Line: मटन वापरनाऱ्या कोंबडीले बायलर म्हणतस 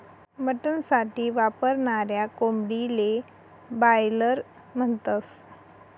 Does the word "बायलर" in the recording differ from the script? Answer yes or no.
no